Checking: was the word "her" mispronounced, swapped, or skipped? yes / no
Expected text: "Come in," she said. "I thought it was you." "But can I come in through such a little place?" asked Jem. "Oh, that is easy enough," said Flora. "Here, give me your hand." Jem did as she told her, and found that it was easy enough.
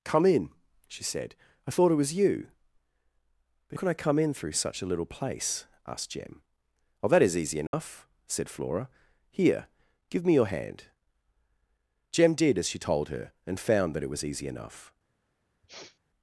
no